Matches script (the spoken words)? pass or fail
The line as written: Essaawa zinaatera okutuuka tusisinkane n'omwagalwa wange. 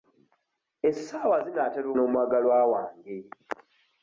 fail